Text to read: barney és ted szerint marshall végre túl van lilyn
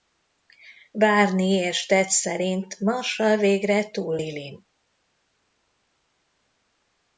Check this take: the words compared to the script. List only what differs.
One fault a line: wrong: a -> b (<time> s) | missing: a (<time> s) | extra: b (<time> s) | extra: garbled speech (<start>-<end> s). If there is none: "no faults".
missing: van (4.2 s)